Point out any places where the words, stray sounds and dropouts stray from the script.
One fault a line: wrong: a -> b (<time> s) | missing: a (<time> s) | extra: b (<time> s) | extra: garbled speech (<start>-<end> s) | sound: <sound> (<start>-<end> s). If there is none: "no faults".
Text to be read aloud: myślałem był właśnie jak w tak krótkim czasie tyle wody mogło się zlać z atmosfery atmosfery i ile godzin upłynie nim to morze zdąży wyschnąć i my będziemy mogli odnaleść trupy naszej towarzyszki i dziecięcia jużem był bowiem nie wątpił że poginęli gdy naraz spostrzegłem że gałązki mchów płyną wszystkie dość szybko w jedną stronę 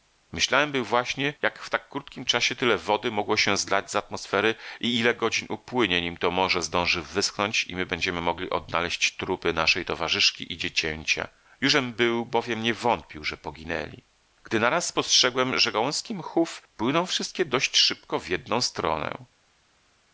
missing: atmosfery (4.5 s)